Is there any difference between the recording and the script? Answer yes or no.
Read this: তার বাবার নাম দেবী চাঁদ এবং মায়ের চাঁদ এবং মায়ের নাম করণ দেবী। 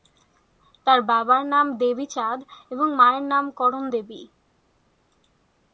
yes